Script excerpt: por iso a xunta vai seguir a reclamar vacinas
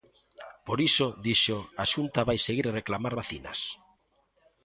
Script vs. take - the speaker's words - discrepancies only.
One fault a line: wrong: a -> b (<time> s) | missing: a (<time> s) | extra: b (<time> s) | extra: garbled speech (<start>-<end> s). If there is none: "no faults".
extra: dixo (1.2 s)